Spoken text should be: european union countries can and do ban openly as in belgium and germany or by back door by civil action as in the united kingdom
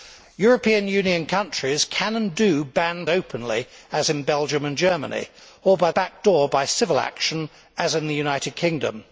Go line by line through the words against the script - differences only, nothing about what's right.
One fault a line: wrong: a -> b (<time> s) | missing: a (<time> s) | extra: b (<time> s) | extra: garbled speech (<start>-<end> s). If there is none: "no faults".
no faults